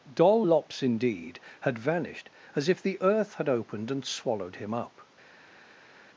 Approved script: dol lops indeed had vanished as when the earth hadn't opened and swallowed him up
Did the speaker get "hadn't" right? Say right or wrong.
wrong